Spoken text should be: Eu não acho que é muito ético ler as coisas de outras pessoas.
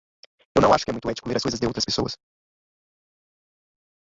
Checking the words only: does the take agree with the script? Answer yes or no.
yes